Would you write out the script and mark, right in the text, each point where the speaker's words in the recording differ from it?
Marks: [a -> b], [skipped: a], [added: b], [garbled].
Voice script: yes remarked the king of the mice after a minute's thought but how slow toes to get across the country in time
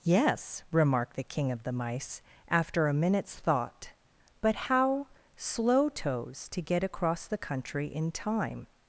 yes remarked the king of the mice after a minute's thought but how slow toes to get across the country in time